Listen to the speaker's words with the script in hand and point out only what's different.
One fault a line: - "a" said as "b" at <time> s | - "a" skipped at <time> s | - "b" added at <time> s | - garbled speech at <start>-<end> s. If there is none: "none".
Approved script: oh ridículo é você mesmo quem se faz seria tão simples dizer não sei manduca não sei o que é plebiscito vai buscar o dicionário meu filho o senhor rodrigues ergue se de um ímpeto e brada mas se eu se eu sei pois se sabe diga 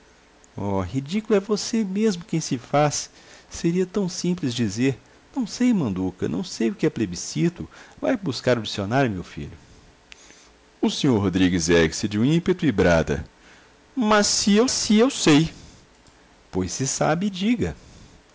none